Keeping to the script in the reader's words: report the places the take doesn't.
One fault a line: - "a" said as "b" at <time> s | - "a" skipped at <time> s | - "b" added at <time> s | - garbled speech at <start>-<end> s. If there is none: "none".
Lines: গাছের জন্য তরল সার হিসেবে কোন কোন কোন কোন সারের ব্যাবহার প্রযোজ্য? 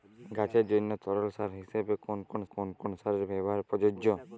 none